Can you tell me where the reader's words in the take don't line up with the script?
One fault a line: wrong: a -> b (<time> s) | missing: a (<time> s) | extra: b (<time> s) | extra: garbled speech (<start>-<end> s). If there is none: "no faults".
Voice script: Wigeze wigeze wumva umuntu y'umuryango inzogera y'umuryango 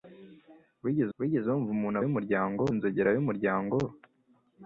no faults